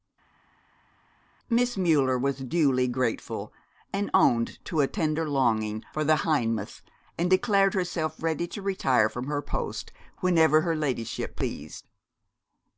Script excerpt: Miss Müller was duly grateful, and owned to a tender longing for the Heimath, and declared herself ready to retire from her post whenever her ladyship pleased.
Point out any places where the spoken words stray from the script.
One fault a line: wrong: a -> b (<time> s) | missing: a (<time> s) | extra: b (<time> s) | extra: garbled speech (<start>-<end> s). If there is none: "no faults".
no faults